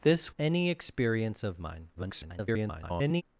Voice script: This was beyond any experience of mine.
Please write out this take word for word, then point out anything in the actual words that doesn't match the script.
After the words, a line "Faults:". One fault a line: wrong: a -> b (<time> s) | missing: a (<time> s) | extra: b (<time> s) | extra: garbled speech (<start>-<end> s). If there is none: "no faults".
This any experience of mine. [garbled]
Faults:
missing: was beyond (0.3 s)
extra: garbled speech (1.9-3.2 s)